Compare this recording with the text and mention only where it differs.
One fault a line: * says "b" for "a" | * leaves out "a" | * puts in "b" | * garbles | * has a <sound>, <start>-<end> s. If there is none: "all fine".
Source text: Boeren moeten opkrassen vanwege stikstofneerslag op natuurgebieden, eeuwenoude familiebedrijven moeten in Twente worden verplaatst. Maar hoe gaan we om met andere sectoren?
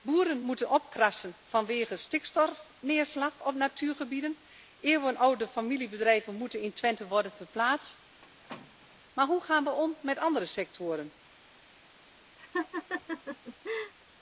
* has a squeak, 8.2-9.0 s
* has a laugh, 12.4-13.9 s